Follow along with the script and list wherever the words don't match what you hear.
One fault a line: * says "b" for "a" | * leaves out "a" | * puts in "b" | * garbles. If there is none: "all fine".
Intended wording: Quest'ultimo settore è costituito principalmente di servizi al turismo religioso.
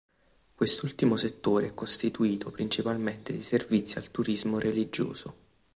all fine